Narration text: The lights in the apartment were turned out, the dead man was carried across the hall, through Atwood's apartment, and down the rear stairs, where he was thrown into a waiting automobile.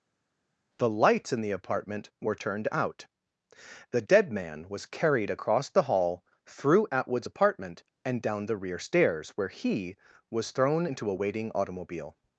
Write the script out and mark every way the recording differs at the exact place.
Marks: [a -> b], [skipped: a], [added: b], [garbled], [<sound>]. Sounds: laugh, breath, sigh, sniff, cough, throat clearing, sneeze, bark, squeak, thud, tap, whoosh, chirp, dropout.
The lights in the apartment were turned out, the dead man was carried across the hall, through Atwood's apartment, and down the rear stairs, where he was thrown into a waiting automobile.